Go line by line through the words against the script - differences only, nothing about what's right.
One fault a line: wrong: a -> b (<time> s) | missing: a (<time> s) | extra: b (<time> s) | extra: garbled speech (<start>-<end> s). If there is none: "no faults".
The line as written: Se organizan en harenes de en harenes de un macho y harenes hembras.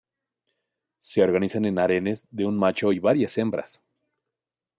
missing: en harenes de (2.5 s)
wrong: harenes -> varias (3.0 s)